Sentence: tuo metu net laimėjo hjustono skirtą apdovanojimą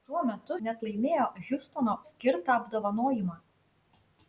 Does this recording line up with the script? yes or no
yes